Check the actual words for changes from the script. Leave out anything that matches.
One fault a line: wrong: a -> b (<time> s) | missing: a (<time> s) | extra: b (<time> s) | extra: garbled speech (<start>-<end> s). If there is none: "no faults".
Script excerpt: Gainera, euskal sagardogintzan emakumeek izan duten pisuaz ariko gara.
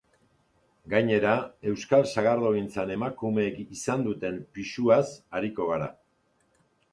no faults